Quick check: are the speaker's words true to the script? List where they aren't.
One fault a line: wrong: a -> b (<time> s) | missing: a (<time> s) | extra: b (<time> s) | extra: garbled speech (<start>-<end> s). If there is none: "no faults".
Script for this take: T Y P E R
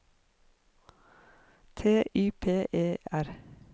no faults